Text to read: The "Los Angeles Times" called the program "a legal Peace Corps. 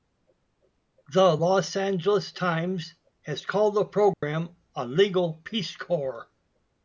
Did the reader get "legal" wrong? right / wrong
right